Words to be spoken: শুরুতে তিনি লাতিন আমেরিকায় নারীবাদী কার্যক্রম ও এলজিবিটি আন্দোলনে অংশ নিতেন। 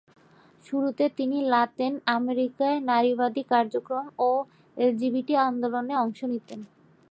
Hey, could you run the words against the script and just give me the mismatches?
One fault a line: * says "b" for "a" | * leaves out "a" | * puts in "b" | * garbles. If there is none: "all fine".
all fine